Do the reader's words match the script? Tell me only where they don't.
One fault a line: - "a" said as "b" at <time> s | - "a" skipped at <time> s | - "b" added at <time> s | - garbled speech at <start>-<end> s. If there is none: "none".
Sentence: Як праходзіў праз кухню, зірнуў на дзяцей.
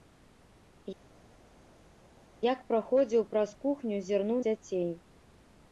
- "на" skipped at 4.4 s